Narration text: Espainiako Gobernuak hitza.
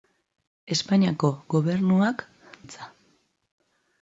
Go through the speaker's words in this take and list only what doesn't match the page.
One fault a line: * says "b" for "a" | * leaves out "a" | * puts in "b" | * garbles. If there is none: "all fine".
all fine